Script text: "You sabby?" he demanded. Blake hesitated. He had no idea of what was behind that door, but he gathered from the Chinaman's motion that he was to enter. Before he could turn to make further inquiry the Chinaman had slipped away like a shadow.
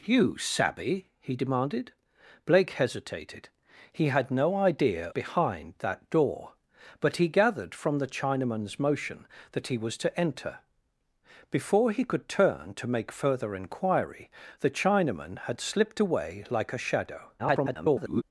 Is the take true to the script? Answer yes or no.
no